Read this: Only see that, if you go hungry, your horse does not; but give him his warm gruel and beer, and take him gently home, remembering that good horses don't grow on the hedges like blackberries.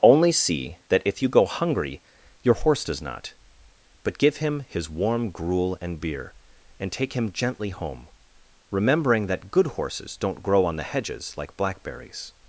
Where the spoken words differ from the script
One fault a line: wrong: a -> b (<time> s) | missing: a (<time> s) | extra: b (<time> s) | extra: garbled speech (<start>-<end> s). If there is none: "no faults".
no faults